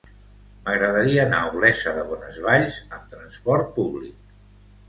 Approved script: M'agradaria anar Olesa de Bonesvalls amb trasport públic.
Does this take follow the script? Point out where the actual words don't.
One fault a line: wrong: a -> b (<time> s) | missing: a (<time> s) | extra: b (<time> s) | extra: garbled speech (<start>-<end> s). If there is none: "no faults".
extra: a (1.4 s)